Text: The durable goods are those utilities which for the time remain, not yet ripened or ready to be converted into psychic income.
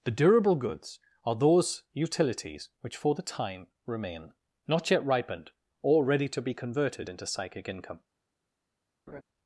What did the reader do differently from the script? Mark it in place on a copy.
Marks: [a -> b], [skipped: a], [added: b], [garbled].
The durable goods are those utilities which for the time remain, not yet ripened or ready to be converted into psychic income.